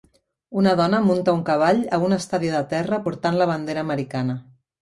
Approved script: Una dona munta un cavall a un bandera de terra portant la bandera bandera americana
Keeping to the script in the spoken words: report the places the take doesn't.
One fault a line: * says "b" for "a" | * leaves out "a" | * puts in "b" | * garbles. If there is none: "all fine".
* says "estadi" for "bandera"
* leaves out "bandera"